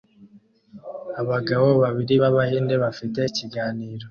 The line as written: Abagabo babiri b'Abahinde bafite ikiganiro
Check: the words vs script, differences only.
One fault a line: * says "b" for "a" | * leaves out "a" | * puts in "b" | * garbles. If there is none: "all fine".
all fine